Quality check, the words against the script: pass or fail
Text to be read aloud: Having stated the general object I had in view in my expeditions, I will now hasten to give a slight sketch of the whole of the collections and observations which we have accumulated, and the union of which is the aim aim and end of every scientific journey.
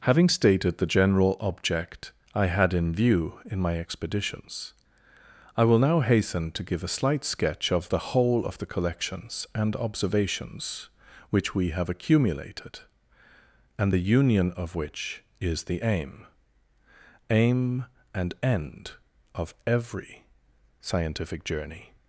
pass